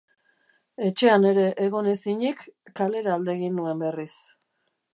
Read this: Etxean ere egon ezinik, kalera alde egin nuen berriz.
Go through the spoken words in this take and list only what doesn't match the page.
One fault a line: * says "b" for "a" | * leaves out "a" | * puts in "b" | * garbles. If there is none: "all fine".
all fine